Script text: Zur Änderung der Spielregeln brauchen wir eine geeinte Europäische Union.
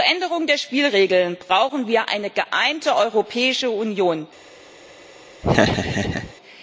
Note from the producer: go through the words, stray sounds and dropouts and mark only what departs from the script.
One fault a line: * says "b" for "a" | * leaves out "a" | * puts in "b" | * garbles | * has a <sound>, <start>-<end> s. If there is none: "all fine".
* has a laugh, 5.4-6.3 s